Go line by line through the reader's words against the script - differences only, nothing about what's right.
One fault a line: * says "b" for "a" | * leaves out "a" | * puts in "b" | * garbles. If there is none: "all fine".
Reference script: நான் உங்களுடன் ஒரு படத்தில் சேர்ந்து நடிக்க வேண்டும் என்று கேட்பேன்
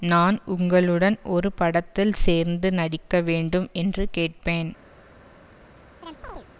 all fine